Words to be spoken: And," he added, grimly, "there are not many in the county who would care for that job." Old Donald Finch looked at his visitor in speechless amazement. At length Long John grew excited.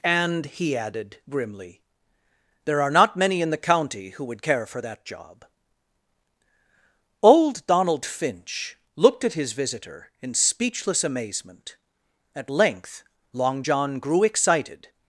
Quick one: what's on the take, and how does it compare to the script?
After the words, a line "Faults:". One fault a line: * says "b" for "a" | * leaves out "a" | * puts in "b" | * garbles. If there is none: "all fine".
And," he added, grimly, "there are not many in the county who would care for that job." Old Donald Finch looked at his visitor in speechless amazement. At length Long John grew excited.
Faults:
all fine